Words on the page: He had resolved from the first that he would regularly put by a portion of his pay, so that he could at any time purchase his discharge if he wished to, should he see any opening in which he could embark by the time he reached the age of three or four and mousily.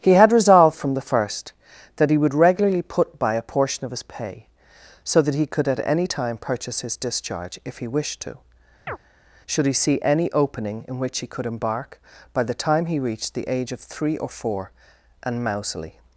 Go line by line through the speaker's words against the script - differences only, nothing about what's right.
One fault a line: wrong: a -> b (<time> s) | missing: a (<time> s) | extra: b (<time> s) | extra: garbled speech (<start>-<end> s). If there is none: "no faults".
no faults